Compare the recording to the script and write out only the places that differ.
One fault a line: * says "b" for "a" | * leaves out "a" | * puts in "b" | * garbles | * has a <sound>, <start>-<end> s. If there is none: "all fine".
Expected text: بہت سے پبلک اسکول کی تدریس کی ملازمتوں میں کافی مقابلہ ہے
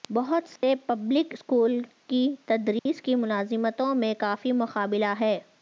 * has a dropout, 0.6-0.6 s
* has a dropout, 2.8-2.9 s